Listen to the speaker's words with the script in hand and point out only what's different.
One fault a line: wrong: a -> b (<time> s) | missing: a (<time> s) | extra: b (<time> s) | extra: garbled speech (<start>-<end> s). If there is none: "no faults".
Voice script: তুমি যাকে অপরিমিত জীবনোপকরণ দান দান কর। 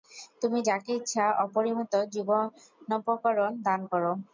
extra: ইচ্ছা (1.0 s)
missing: দান (3.8 s)